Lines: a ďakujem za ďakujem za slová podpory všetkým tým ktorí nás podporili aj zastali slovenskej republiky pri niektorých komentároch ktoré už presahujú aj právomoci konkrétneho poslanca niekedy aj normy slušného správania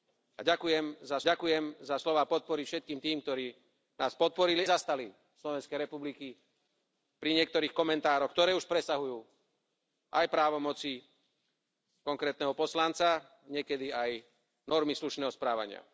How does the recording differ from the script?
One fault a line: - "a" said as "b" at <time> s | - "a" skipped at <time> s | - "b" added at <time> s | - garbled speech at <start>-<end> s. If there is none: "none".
none